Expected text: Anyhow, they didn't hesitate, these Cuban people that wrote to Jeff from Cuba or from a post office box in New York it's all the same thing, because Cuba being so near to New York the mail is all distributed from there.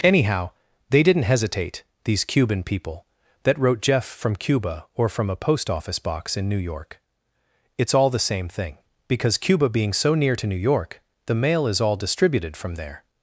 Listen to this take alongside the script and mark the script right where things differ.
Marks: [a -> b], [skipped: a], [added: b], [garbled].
Anyhow, they didn't hesitate, these Cuban people that wrote [skipped: to] Jeff from Cuba or from a post office box in New York it's all the same thing, because Cuba being so near to New York the mail is all distributed from there.